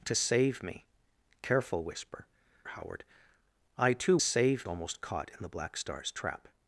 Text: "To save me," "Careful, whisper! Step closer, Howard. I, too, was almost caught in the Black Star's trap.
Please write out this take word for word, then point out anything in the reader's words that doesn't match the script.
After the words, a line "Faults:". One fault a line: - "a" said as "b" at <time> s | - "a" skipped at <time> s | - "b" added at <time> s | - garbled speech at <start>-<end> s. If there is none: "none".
"To save me," "Careful, whisper! Howard. I, too, save almost caught in the Black Star's trap.
Faults:
- "Step closer" skipped at 2.2 s
- "was" said as "save" at 4.2 s